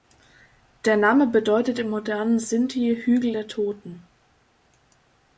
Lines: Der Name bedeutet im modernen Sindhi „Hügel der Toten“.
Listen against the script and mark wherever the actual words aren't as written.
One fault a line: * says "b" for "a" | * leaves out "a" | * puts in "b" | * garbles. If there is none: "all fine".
all fine